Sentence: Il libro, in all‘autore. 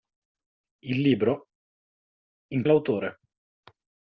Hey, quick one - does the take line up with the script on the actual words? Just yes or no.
yes